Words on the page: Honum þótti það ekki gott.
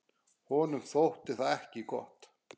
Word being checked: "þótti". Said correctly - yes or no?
yes